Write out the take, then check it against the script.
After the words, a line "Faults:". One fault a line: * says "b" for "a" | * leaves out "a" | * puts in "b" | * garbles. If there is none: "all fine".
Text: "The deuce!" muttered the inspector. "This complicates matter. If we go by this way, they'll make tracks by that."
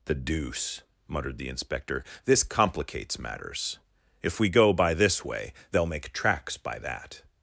"The deuce!" muttered the inspector. "This complicates matters. If we go by this way, they'll make tracks by that."
Faults:
* says "matters" for "matter"